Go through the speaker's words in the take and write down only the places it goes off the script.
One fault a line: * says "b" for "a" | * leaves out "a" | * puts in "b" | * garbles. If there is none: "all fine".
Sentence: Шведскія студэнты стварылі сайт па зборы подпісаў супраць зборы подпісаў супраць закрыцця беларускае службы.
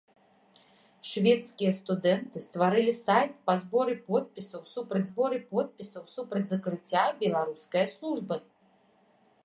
all fine